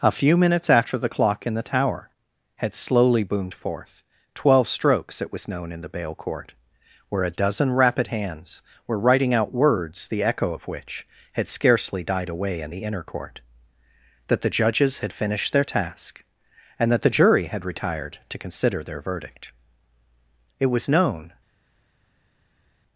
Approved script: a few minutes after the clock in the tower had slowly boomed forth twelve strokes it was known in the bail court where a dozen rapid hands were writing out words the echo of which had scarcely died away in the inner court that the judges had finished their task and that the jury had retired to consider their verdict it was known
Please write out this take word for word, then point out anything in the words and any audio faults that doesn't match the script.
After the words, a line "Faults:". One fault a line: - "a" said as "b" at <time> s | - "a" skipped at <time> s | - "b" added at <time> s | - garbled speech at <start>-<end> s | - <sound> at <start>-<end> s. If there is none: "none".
a few minutes after the clock in the tower had slowly boomed forth twelve strokes it was known in the bail court where a dozen rapid hands were writing out words the echo of which had scarcely died away in the inner court that the judges had finished their task and that the jury had retired to consider their verdict it was known
Faults:
none